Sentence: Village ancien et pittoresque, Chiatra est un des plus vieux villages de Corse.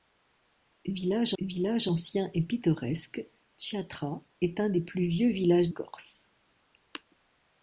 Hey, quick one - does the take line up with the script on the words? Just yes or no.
no